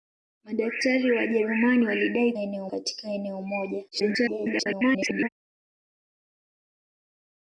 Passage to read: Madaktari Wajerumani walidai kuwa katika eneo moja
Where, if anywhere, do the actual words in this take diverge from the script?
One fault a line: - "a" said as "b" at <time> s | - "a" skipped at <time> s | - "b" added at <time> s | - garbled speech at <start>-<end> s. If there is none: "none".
- "kuwa" said as "eneo" at 2.4 s
- garbled speech at 3.9-5.3 s